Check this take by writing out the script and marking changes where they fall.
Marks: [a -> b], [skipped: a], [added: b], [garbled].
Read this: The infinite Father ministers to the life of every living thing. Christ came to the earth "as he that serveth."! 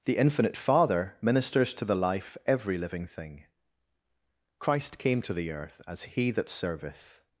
The infinite Father ministers to the life [skipped: of] every living thing. Christ came to the earth "as he that serveth."!